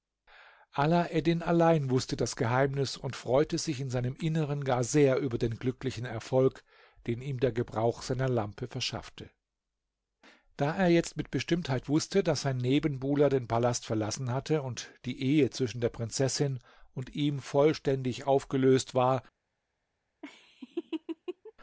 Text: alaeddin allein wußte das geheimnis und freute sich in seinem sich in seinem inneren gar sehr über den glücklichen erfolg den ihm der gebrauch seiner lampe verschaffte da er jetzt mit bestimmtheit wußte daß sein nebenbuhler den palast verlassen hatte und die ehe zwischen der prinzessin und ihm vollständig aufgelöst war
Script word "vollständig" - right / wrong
right